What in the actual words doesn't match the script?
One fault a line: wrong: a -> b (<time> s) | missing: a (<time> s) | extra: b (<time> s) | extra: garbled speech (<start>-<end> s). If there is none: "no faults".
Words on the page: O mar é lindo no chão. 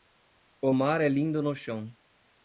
no faults